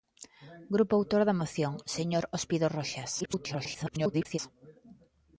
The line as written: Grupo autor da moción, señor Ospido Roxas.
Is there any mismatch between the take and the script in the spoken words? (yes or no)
yes